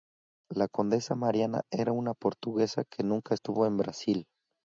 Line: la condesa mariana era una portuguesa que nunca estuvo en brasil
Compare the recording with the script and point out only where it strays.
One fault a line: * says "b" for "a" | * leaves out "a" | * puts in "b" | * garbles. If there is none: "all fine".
all fine